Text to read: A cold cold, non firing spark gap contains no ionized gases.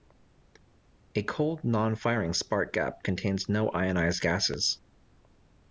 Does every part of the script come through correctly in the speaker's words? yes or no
no